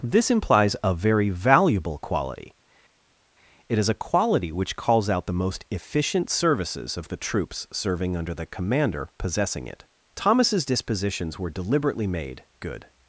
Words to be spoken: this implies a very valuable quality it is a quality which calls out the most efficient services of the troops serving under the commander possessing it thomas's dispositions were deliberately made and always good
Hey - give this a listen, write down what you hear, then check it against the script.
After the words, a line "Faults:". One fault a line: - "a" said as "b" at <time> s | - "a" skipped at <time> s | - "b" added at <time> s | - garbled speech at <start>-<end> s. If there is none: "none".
this implies a very valuable quality it is a quality which calls out the most efficient services of the troops serving under the commander possessing it thomas's dispositions were deliberately made good
Faults:
- "and always" skipped at 12.4 s